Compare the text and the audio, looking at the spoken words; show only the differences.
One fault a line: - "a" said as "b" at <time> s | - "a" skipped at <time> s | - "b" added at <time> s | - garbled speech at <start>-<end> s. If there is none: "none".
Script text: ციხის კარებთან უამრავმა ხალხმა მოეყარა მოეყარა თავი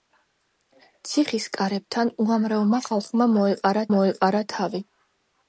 none